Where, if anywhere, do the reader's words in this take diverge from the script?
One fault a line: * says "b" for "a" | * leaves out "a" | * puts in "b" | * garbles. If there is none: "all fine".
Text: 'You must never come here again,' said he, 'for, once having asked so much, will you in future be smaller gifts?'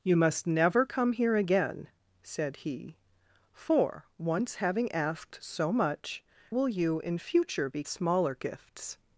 all fine